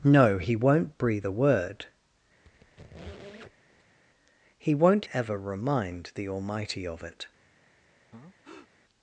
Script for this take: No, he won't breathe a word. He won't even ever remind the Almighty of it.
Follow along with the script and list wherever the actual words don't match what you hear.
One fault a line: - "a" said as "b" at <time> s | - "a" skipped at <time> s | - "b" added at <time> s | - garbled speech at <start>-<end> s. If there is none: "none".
- "even" skipped at 5.1 s